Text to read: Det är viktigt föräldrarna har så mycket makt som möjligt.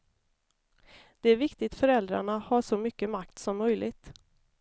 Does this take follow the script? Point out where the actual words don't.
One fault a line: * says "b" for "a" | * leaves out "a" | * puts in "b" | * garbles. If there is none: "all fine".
all fine